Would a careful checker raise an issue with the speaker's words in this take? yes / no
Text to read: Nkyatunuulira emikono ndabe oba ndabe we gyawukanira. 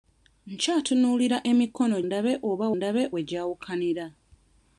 no